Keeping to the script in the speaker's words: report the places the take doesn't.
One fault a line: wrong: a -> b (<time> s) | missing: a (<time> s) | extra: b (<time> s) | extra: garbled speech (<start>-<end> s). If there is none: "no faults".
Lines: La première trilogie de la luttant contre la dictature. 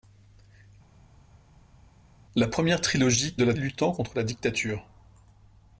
no faults